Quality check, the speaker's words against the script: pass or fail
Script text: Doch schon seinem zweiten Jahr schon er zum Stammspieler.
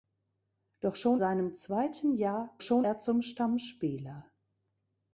pass